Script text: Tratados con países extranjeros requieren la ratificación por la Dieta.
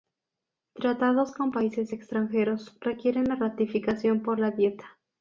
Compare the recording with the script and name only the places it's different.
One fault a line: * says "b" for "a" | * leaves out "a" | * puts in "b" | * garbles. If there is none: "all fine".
all fine